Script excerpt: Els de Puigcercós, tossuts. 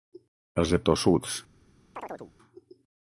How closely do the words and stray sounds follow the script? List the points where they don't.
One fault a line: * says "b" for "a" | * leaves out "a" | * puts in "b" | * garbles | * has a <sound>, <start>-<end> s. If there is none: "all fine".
* leaves out "Puigcercós"
* has a chirp, 2.0-2.3 s